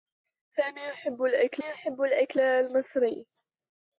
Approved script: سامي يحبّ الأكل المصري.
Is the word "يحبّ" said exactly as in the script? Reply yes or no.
yes